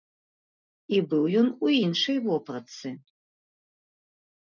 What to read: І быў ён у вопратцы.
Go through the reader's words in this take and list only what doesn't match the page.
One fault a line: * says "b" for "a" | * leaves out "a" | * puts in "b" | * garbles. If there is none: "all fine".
* puts in "іншай"